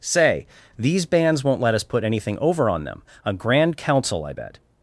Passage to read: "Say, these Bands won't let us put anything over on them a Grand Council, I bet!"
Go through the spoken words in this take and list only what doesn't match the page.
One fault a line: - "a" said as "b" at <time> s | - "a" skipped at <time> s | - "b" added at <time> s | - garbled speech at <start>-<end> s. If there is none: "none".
none